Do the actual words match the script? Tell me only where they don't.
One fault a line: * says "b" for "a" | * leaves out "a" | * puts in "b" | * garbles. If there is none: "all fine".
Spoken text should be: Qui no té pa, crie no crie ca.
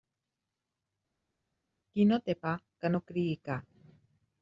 * says "que" for "crie"